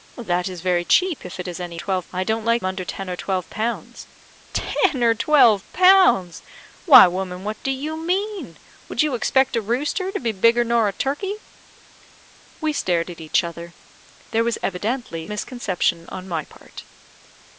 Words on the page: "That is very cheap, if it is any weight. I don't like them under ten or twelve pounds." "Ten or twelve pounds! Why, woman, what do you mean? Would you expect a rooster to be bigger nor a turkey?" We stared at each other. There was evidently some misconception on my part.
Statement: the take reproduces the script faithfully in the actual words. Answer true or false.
false